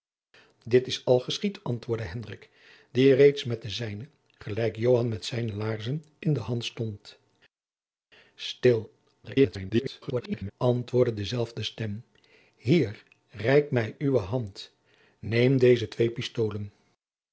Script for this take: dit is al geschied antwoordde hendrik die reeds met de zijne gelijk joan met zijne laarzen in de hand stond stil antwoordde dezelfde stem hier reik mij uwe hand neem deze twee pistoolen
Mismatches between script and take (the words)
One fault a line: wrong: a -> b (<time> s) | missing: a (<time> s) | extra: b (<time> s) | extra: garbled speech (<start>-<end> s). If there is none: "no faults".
extra: garbled speech (9.2-10.5 s)